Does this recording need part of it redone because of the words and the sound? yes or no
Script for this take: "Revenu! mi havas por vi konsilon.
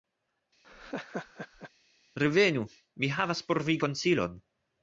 yes